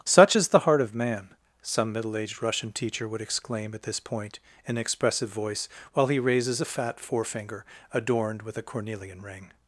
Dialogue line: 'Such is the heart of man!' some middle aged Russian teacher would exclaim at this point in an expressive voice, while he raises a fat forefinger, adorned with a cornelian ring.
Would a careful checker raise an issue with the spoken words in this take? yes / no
yes